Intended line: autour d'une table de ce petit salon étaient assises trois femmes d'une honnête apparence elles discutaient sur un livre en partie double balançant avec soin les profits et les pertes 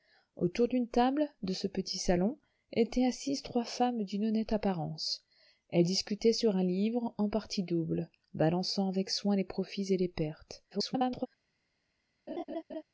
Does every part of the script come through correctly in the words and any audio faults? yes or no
no